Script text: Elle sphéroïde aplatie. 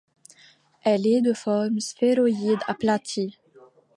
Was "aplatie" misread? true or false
false